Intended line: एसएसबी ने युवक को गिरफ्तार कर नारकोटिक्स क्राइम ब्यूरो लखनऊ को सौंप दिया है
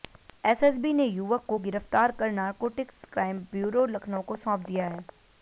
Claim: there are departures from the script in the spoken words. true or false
false